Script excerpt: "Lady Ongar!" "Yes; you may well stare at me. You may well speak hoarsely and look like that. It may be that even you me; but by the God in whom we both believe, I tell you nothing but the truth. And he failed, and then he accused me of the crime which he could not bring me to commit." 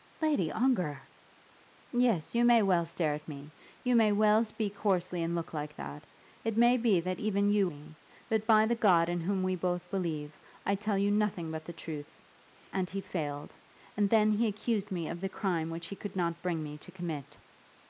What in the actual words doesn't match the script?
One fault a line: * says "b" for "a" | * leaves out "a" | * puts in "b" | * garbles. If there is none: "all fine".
all fine